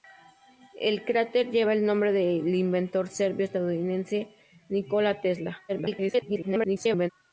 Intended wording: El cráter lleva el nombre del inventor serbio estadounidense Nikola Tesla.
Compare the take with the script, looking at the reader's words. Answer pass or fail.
fail